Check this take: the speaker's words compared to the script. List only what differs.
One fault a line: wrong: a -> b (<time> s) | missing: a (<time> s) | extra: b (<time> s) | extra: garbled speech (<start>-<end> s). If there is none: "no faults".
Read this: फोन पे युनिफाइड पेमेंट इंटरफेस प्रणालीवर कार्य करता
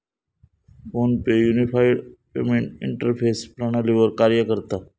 no faults